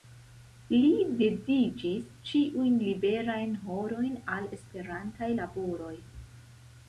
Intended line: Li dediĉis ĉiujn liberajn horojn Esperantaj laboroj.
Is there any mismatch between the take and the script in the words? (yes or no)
yes